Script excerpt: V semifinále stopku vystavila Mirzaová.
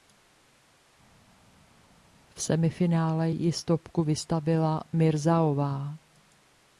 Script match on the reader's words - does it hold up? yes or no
no